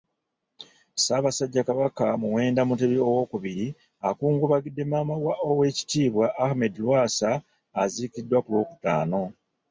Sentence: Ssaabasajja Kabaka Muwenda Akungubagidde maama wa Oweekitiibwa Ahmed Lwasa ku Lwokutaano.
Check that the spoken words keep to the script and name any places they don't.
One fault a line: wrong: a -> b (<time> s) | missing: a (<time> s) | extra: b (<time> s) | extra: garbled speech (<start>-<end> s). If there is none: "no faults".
extra: Mutebi Owookubiri (2.7 s)
extra: aziikiddwa (7.8 s)